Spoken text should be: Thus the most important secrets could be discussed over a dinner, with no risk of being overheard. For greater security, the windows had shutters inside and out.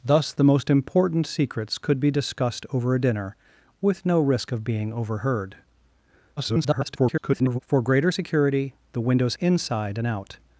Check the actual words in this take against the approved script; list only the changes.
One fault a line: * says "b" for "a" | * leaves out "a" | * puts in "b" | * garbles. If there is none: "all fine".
* garbles
* leaves out "had shutters"